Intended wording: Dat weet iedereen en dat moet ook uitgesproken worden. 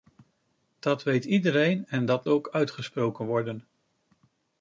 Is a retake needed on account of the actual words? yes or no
yes